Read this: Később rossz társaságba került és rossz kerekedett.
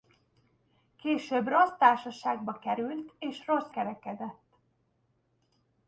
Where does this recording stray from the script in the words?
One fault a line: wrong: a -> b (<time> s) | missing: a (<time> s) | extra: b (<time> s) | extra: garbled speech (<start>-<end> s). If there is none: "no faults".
no faults